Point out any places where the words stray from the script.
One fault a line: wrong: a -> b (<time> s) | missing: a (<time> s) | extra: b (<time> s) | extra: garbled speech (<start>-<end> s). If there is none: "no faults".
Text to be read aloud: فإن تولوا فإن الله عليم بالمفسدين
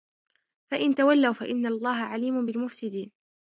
no faults